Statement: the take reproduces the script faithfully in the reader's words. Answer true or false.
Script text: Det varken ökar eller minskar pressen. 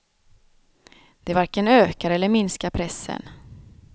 true